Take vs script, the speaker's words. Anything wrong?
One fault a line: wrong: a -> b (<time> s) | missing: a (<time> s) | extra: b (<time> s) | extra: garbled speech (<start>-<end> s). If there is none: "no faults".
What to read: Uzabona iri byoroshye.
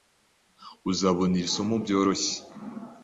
extra: somo (1.6 s)